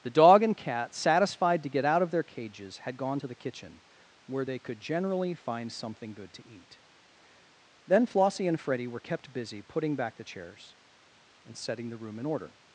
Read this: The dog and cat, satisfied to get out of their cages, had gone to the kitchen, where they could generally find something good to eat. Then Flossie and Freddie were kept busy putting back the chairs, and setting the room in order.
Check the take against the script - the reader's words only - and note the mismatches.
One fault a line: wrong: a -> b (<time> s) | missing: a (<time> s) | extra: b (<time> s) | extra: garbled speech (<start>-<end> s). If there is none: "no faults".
no faults